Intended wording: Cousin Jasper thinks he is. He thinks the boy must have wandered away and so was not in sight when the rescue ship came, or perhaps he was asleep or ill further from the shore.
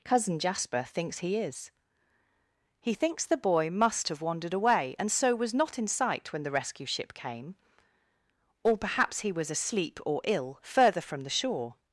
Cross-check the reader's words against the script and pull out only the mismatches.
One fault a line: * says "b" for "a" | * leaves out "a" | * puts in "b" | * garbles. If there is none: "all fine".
all fine